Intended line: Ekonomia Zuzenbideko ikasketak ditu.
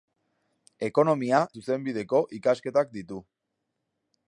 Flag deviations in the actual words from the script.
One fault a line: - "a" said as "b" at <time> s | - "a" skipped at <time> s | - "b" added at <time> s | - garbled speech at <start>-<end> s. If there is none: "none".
none